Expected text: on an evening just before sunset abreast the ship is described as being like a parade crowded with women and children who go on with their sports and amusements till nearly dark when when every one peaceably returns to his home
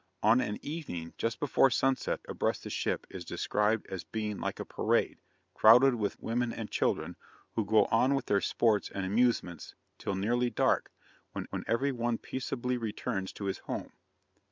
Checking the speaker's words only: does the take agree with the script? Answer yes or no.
yes